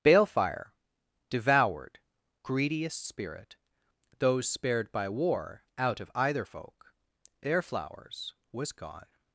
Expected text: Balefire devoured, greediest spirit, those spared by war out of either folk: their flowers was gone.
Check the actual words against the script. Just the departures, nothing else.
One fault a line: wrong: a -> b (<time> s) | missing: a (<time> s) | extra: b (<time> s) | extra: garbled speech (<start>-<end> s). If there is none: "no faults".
no faults